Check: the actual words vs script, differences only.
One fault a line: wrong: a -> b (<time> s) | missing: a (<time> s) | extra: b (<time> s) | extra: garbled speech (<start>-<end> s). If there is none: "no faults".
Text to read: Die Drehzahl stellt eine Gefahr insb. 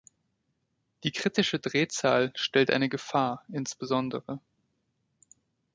extra: kritische (1.1 s)